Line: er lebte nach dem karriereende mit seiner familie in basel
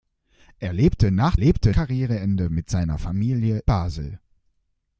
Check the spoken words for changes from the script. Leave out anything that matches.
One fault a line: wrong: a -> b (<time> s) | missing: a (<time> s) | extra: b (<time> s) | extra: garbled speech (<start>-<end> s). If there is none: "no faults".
wrong: dem -> lebte (1.4 s)
missing: in (3.6 s)